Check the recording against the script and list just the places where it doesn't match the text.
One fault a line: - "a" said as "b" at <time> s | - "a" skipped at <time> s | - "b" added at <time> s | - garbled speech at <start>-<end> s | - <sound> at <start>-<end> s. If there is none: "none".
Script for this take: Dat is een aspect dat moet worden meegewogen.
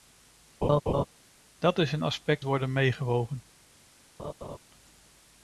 - laugh at 0.6-1.0 s
- "dat moet" skipped at 2.4 s
- laugh at 4.2-4.6 s